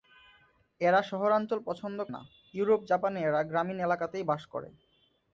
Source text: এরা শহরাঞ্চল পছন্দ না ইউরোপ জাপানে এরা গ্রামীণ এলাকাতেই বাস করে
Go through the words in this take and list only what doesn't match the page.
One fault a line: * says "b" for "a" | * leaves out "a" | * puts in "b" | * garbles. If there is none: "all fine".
all fine